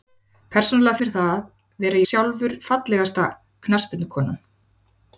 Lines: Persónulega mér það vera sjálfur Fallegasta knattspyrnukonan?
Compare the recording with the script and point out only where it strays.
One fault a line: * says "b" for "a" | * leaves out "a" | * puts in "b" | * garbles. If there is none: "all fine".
all fine